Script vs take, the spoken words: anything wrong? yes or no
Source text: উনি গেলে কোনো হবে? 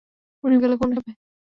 no